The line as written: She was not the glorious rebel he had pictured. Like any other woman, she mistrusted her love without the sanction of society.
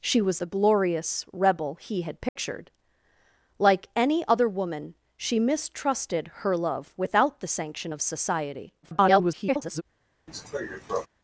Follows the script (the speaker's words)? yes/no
no